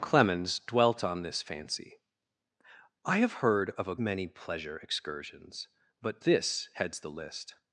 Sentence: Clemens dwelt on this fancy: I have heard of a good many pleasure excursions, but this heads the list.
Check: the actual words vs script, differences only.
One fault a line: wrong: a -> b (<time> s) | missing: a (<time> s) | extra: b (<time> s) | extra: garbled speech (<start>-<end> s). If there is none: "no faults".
missing: good (4.0 s)